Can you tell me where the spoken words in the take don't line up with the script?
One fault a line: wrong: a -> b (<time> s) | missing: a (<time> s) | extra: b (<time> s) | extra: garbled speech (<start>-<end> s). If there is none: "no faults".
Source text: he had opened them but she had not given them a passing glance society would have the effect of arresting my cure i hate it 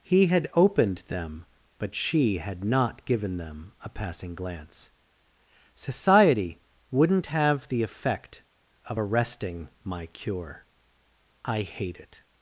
wrong: would -> wouldn't (6.9 s)